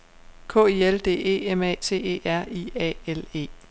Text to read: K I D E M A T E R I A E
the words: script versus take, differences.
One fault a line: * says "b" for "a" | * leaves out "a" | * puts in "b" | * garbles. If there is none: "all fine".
* puts in "L"
* puts in "L"